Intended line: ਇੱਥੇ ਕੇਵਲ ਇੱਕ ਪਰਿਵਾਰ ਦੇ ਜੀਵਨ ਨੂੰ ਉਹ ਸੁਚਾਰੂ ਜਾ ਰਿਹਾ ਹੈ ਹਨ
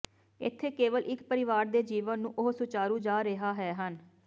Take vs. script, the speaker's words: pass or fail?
pass